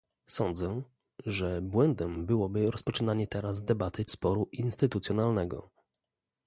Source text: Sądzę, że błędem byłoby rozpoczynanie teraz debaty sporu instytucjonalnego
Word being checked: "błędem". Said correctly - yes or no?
yes